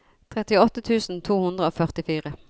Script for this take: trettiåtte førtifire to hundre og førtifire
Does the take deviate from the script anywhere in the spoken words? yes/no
yes